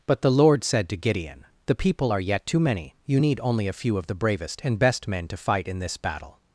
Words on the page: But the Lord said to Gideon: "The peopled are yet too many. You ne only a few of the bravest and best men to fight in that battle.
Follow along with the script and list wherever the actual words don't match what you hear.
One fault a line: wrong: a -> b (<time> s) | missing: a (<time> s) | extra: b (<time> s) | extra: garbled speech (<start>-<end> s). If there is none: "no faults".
wrong: peopled -> people (1.8 s)
wrong: ne -> need (3.2 s)
wrong: that -> this (5.8 s)